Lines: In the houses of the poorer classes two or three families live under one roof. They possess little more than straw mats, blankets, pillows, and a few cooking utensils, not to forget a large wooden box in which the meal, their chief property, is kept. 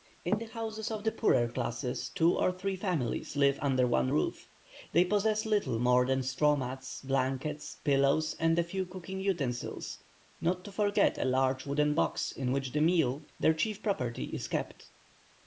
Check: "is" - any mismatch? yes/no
no